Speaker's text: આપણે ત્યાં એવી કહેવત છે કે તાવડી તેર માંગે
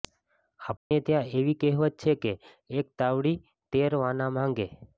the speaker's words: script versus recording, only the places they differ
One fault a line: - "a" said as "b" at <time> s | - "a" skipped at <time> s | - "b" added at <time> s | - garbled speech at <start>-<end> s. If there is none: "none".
- "એક" added at 2.8 s
- "વાના" added at 4.0 s